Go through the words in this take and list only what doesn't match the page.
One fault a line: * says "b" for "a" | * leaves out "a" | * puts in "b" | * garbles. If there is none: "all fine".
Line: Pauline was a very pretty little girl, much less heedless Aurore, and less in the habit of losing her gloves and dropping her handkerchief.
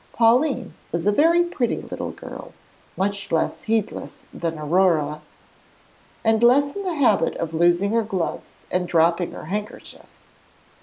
* puts in "than"